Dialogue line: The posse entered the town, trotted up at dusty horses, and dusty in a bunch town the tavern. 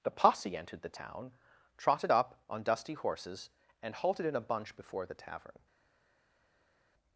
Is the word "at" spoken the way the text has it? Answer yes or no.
no